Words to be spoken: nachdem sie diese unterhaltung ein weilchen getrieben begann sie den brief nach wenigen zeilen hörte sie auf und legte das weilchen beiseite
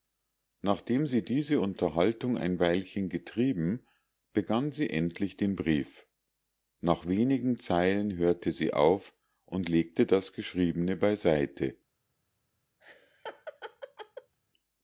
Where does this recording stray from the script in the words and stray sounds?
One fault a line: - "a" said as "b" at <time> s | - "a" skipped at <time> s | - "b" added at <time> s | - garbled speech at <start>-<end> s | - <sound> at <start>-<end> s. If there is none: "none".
- "endlich" added at 4.9 s
- "weilchen" said as "geschriebene" at 10.3 s
- laugh at 12.8-14.3 s